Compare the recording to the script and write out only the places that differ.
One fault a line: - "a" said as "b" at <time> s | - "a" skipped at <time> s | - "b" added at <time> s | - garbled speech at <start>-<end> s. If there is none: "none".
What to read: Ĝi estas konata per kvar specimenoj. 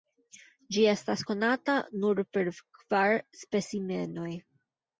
- "nur" added at 2.0 s